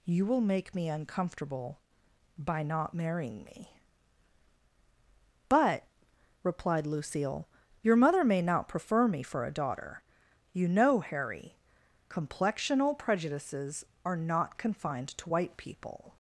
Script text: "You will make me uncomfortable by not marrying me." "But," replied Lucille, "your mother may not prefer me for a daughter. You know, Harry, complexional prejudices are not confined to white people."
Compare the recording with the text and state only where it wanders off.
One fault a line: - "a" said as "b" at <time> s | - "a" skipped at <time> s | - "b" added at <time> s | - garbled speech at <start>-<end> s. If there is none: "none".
none